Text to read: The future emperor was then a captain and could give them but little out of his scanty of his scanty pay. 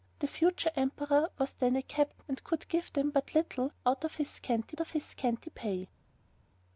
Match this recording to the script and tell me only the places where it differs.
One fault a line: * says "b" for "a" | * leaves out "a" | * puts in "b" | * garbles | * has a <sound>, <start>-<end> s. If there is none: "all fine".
all fine